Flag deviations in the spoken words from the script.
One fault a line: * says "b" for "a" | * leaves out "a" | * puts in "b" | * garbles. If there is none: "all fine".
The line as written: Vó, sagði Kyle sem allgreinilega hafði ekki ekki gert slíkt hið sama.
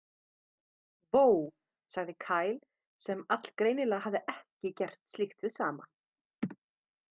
* leaves out "ekki"